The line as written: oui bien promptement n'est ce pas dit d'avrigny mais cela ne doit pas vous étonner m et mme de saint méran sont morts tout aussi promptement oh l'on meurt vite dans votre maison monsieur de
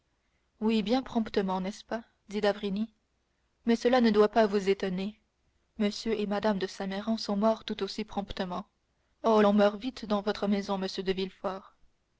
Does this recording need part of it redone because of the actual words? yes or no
no